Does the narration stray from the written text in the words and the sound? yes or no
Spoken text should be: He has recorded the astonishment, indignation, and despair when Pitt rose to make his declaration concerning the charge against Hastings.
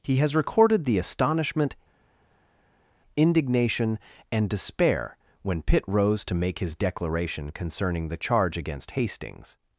no